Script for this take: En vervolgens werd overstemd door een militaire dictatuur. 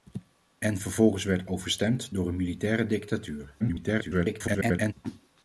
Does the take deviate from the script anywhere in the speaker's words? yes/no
yes